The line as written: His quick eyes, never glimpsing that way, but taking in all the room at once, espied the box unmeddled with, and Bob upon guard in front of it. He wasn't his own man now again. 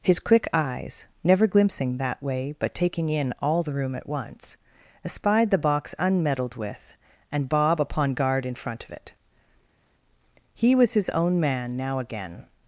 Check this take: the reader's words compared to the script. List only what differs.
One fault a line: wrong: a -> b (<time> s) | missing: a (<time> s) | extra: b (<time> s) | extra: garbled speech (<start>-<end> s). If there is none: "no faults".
wrong: wasn't -> was (10.7 s)